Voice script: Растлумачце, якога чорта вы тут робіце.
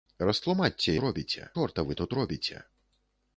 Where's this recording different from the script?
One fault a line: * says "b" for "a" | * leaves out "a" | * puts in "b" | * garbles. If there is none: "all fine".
* says "робіце" for "якога"